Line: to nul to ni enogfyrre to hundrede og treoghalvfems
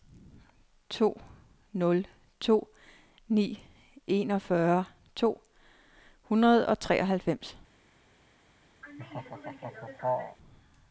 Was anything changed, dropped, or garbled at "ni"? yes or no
no